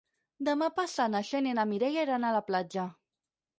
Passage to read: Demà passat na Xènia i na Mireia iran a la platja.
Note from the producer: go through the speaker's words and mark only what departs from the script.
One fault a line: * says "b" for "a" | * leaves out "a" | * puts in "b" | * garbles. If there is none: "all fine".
all fine